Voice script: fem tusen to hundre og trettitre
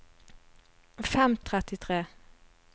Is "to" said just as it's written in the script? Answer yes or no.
no